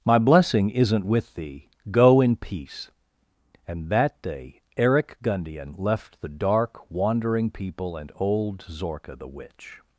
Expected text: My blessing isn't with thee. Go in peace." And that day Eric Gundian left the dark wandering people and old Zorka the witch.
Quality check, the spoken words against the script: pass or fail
pass